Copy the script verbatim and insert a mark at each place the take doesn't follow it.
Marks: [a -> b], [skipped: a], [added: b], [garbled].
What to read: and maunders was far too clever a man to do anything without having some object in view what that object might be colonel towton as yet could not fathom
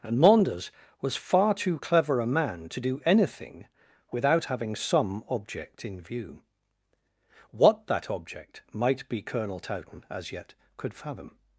and maunders was far too clever a man to do anything without having some object in view what that object might be colonel towton as yet could [skipped: not] fathom